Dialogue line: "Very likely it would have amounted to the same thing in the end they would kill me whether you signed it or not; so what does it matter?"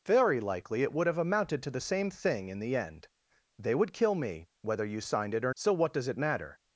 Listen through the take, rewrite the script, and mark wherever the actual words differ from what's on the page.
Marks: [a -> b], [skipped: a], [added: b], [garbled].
"Very likely it would have amounted to the same thing in the end they would kill me whether you signed it or [skipped: not;] so what does it matter?"